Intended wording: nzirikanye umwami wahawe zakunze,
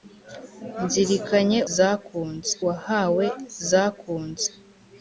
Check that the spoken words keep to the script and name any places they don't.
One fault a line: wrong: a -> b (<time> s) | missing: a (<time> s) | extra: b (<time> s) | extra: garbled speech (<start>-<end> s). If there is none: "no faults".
wrong: umwami -> zakunze (1.7 s)